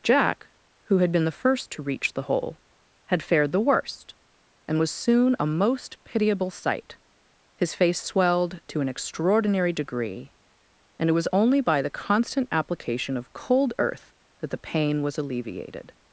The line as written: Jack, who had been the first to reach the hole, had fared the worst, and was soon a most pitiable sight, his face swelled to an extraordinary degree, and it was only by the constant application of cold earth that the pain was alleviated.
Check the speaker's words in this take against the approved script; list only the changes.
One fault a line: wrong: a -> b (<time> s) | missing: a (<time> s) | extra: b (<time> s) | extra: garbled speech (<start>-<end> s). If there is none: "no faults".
no faults